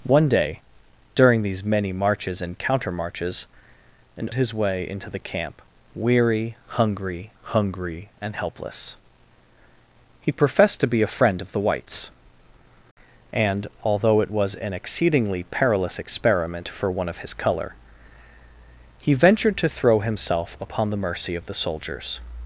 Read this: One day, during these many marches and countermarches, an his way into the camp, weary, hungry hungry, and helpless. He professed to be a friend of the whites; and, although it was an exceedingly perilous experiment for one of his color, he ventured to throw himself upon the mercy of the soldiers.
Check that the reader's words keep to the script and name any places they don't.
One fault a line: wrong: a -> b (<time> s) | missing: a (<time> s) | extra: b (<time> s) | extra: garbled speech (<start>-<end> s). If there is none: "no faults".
no faults